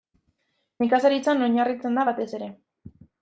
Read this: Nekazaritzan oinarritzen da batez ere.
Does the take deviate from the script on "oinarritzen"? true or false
false